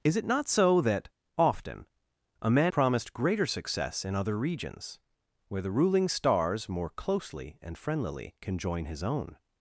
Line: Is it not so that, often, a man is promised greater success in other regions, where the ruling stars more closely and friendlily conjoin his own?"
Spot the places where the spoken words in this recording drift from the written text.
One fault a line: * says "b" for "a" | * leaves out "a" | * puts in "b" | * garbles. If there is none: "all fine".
* leaves out "is"